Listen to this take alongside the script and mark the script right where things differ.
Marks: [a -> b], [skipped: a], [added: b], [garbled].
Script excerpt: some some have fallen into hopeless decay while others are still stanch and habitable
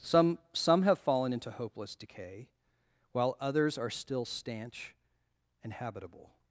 some some have fallen into hopeless decay while others are still stanch and habitable